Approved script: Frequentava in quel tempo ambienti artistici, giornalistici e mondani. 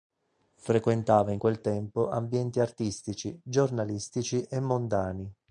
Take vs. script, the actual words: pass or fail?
pass